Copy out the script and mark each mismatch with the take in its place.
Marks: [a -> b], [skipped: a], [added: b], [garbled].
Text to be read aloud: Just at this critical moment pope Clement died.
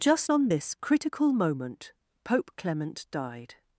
Just [at -> on] this critical moment pope Clement died.